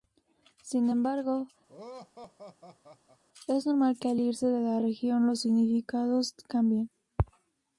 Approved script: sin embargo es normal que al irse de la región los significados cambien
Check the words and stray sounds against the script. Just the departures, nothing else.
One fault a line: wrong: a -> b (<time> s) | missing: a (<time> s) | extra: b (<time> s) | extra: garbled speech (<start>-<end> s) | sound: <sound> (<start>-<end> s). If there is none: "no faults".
sound: laugh (1.7-3.2 s)